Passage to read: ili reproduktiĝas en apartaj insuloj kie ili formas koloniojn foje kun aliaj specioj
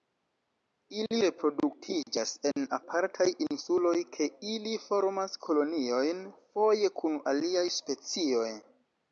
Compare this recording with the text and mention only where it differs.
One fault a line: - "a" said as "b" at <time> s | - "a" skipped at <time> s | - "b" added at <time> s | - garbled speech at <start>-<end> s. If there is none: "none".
none